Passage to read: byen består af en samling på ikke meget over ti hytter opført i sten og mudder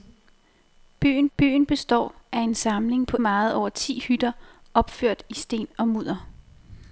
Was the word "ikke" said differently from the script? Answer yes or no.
yes